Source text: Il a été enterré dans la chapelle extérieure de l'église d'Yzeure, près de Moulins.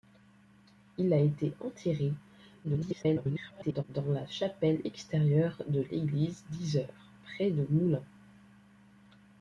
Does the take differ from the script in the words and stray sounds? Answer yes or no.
yes